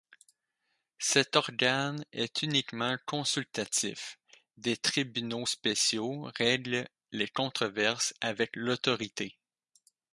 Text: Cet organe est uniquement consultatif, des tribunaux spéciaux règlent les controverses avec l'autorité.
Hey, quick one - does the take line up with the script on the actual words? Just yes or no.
yes